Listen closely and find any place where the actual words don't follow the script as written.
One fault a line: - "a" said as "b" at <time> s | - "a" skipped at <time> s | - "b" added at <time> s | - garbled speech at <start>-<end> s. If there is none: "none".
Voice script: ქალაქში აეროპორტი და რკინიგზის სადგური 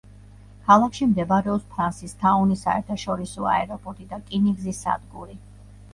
- "მდებარეობს ფრანსისთაუნის საერთაშორისო" added at 1.1 s